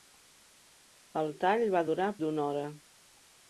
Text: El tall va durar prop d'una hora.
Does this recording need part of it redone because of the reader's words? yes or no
yes